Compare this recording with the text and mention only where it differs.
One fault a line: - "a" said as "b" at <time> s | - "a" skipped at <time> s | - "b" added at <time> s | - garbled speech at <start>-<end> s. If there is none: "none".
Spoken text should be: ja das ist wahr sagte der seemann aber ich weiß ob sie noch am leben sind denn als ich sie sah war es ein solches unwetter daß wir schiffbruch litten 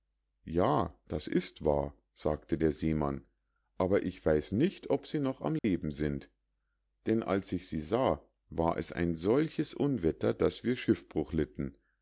- "nicht" added at 4.5 s